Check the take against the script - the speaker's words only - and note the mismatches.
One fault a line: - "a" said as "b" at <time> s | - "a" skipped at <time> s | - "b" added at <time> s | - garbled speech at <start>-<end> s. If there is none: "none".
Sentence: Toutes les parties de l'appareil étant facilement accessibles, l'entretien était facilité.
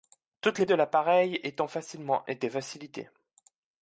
- "parties" skipped at 0.7 s
- "accessibles l'entretien" skipped at 2.2 s